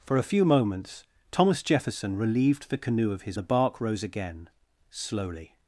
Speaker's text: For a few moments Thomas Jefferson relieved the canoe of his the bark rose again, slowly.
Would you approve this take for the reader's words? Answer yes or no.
yes